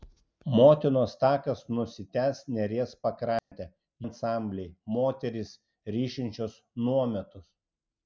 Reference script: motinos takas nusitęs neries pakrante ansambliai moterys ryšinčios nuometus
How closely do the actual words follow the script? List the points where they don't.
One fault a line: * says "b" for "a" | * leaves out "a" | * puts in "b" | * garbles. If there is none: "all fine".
all fine